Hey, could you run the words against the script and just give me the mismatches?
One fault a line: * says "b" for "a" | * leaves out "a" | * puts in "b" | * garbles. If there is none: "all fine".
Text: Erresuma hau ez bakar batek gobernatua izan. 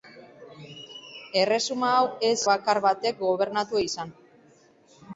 all fine